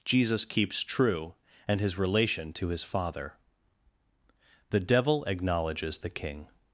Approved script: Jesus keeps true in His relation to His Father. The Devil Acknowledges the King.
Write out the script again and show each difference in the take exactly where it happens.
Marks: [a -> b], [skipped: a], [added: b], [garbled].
Jesus keeps true [in -> and] His relation to His Father. The Devil Acknowledges the King.